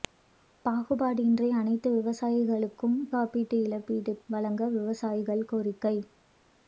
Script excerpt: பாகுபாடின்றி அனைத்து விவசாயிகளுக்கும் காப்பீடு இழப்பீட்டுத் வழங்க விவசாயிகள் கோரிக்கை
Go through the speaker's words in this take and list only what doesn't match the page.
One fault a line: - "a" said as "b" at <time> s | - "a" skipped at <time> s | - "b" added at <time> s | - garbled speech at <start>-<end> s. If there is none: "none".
none